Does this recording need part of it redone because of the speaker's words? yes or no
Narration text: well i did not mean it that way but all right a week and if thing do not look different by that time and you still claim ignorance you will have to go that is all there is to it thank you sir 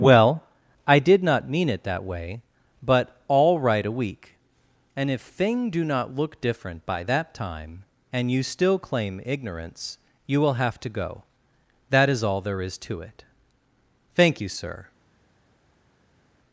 no